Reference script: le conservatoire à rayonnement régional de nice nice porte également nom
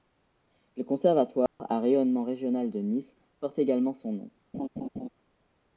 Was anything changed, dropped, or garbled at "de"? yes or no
no